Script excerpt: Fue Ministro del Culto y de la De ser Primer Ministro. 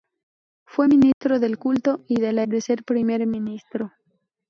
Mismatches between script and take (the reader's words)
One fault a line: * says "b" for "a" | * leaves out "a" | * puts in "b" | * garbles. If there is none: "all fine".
all fine